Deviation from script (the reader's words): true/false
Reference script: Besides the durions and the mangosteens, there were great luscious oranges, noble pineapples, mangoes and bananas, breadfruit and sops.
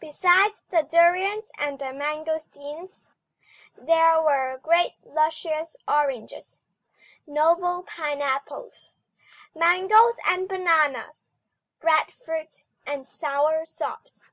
true